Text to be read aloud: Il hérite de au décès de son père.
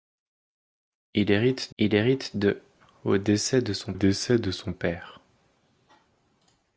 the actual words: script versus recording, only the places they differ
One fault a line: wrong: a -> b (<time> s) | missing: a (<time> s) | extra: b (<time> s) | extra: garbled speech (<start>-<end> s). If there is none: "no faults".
extra: il hérite (1.8 s)
extra: décès de son (3.9 s)